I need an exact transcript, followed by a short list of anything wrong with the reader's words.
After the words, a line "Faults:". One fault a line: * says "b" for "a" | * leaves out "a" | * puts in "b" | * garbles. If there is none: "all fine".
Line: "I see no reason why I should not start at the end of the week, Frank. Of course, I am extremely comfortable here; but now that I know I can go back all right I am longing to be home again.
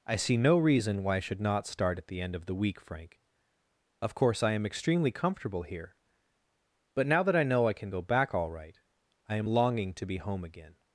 "I see no reason why I should not start at the end of the week, Frank. Of course, I am extremely comfortable here; but now that I know I can go back all right I am longing to be home again.
Faults:
all fine